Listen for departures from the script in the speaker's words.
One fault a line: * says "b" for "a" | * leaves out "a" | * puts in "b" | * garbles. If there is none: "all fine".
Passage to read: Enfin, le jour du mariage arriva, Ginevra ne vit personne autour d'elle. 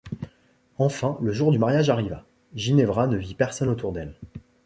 all fine